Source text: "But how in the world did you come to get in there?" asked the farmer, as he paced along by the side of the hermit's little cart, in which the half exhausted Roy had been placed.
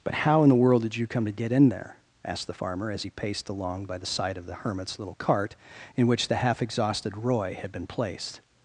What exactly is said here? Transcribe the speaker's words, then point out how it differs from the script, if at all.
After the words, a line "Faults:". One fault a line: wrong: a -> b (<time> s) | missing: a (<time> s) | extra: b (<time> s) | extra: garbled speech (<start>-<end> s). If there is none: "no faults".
"But how in the world did you come to get in there?" asked the farmer, as he paced along by the side of the hermit's little cart, in which the half exhausted Roy had been placed.
Faults:
no faults